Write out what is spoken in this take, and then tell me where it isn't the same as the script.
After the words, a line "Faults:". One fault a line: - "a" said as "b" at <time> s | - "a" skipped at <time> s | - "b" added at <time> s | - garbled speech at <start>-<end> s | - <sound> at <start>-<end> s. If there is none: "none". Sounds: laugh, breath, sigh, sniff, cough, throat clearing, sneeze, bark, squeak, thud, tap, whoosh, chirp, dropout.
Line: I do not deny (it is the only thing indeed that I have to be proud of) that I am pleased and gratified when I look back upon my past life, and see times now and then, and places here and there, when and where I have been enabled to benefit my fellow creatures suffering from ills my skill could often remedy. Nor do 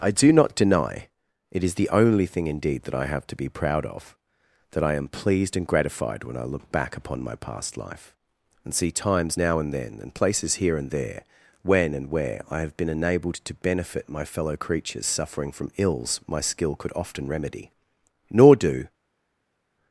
I do not deny (it is the only thing indeed that I have to be proud of) that I am pleased and gratified when I look back upon my past life, and see times now and then, and places here and there, when and where I have been enabled to benefit my fellow creatures suffering from ills my skill could often remedy. Nor do
Faults:
none